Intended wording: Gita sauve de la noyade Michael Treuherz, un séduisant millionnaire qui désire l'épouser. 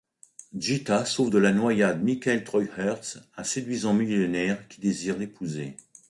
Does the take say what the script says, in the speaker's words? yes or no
yes